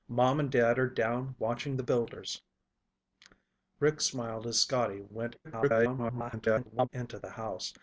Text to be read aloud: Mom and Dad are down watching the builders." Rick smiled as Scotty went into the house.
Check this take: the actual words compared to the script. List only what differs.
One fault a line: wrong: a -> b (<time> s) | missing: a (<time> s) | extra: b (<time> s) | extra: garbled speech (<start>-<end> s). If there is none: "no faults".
extra: garbled speech (5.4-6.9 s)